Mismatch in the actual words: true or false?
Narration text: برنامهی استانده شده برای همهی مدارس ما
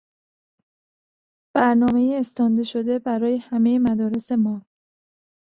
false